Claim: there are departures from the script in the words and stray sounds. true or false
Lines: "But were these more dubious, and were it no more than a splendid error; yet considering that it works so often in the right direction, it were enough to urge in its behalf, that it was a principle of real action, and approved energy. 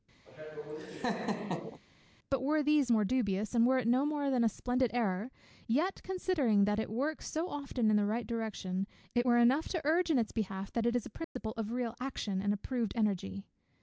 true